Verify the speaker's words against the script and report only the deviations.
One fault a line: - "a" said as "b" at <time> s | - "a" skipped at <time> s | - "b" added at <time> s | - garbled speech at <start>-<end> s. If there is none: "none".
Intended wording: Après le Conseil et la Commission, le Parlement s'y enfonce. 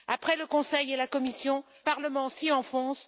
- "le" skipped at 1.6 s